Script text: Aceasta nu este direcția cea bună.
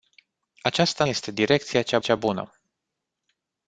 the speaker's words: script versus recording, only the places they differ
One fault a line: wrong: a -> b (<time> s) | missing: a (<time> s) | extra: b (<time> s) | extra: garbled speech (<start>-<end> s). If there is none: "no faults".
missing: nu (1.1 s)
extra: cea (2.0 s)